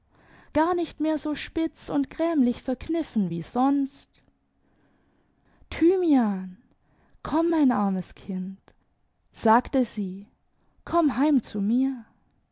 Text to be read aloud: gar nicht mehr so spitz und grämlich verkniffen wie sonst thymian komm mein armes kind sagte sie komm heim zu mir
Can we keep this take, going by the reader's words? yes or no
yes